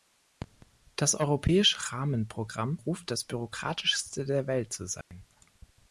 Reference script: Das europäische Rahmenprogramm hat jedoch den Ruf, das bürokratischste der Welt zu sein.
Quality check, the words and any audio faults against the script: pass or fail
fail